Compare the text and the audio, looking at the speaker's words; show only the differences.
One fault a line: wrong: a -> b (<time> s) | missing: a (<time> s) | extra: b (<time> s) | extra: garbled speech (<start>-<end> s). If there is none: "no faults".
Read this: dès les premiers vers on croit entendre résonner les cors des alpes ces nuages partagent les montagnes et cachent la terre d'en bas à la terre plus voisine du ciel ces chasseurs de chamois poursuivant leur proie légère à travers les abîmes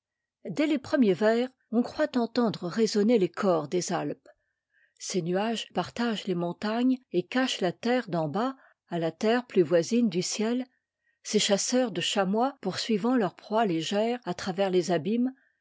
no faults